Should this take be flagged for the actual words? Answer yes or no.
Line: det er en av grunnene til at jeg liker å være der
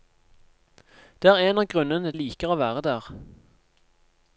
yes